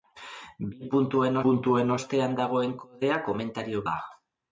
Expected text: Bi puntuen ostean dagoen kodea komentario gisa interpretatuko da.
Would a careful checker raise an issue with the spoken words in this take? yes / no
yes